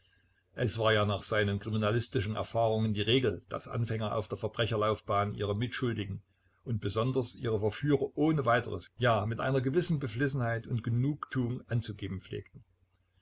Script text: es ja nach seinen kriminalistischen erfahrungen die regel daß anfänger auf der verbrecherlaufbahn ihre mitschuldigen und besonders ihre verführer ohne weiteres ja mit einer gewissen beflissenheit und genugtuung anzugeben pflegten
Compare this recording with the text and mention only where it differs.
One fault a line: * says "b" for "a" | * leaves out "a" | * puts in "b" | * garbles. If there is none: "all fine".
* puts in "war"